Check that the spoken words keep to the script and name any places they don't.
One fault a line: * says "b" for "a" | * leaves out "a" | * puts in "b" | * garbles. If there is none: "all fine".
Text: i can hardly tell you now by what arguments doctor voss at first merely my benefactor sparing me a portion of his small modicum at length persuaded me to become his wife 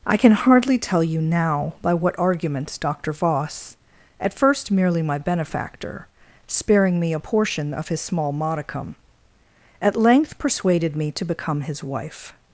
all fine